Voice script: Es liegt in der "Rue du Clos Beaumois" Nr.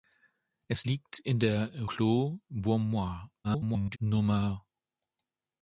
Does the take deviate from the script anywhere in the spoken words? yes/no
yes